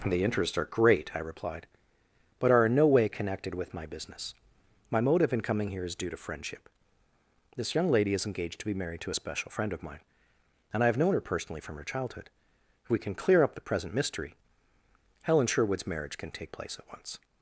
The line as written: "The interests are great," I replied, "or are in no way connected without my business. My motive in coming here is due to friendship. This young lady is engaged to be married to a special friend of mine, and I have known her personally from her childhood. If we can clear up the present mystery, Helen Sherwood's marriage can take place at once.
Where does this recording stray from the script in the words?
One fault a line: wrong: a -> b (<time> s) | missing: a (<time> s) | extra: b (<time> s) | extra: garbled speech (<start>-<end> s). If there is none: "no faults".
wrong: or -> but (2.4 s)
wrong: without -> with (3.5 s)